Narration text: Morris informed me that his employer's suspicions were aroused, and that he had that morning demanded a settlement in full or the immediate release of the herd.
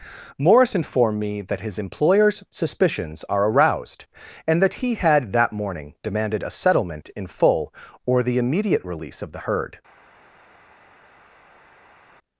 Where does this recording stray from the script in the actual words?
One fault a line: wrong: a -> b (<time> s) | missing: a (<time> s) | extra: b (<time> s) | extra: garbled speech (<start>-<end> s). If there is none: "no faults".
wrong: were -> are (3.3 s)